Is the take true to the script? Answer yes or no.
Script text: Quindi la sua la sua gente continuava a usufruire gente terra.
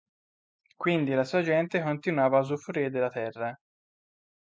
no